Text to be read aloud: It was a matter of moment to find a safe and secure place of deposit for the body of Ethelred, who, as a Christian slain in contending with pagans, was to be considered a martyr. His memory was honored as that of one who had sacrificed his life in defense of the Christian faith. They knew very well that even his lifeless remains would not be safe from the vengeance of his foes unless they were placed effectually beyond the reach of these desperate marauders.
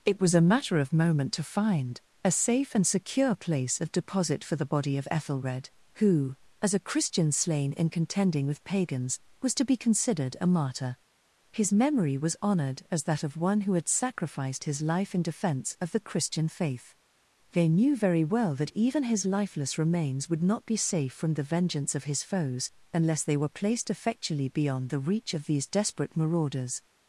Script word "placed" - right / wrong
right